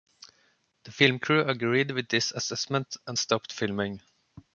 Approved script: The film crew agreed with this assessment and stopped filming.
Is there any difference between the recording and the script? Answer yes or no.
no